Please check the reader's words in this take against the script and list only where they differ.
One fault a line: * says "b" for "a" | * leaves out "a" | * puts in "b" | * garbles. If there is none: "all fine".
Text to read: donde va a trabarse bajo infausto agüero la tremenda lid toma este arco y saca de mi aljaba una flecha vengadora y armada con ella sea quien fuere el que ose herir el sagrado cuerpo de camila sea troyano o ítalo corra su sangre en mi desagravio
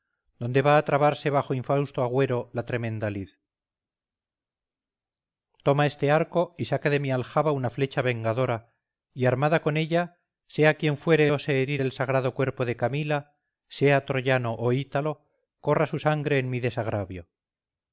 * leaves out "el que"